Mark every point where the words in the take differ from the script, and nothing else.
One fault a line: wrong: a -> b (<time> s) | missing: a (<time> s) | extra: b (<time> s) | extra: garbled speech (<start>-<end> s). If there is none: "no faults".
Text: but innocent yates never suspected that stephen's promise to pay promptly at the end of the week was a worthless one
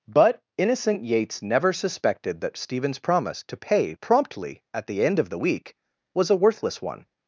no faults